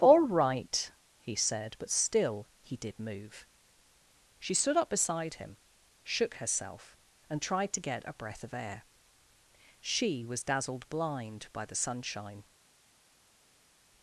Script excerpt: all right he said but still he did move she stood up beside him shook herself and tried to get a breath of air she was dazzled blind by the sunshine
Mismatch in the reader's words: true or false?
false